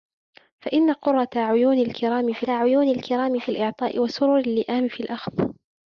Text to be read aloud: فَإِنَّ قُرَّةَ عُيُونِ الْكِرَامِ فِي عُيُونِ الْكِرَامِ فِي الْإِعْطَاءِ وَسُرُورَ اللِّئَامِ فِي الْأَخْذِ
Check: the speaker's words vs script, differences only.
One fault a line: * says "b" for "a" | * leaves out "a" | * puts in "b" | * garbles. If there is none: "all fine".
all fine